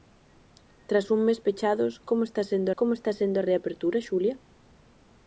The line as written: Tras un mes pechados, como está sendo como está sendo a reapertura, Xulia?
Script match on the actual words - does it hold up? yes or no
yes